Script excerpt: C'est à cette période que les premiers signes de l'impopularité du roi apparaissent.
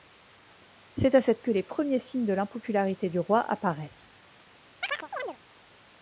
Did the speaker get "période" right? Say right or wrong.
wrong